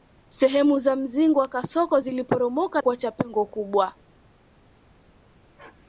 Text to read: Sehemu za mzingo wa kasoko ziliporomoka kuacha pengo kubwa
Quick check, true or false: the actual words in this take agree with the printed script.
true